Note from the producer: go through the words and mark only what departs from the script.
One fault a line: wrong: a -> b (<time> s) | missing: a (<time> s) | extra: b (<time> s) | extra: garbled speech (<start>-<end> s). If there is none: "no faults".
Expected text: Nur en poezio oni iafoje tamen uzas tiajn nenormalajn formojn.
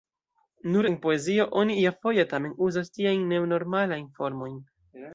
no faults